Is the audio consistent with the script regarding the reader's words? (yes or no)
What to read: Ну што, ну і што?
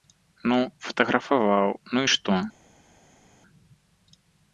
no